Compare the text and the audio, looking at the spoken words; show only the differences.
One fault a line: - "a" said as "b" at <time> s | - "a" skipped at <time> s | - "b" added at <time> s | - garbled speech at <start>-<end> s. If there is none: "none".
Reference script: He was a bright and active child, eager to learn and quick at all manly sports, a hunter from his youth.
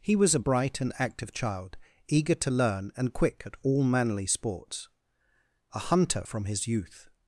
none